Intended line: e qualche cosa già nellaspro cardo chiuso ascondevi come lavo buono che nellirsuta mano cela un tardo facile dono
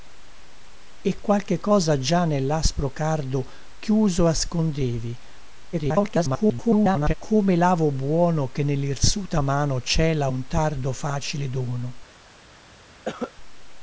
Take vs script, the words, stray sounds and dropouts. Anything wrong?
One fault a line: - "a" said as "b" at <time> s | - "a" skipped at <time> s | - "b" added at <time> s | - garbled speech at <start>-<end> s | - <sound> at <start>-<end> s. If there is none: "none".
- garbled speech at 5.7-7.1 s
- cough at 13.1-13.3 s